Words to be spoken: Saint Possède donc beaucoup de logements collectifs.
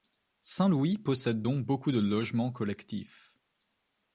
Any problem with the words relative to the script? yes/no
yes